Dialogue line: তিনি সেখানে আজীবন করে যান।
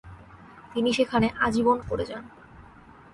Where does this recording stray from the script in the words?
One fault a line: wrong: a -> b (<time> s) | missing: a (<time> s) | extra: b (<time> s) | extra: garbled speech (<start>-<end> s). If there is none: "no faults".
no faults